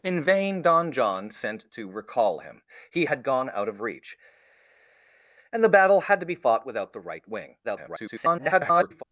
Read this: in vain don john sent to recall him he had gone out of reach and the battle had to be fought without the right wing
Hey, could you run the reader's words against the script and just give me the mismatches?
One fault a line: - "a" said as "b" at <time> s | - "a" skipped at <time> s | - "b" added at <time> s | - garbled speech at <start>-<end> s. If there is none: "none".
- garbled speech at 7.6-9.0 s